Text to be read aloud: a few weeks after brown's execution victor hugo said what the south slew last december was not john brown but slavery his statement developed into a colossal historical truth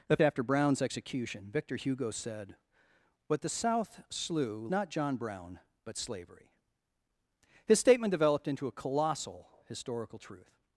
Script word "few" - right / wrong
wrong